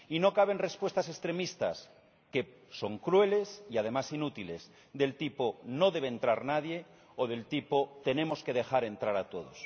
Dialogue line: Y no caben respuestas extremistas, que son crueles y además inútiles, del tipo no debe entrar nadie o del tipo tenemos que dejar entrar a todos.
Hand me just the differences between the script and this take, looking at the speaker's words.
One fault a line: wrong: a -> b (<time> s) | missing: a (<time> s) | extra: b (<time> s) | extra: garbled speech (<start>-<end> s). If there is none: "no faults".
no faults